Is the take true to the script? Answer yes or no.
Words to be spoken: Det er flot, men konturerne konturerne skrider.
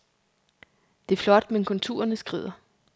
no